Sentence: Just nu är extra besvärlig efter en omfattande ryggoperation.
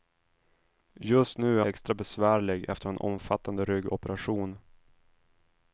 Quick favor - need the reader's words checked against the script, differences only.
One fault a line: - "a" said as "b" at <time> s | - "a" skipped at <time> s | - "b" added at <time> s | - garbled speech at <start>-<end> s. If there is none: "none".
none